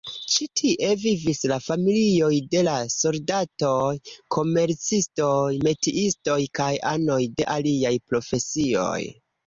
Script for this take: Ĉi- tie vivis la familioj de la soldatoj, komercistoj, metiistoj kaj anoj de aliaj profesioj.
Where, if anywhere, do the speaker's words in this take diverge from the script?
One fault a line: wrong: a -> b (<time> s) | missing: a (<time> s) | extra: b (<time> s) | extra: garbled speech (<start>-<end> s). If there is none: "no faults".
no faults